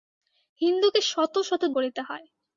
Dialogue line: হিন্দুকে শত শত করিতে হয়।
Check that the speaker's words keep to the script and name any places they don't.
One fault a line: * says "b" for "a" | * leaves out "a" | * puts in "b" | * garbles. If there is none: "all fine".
all fine